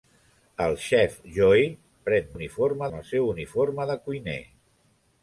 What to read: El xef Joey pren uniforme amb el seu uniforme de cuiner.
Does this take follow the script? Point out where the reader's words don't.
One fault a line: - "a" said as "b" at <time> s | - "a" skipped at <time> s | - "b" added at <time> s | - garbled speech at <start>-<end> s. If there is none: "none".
none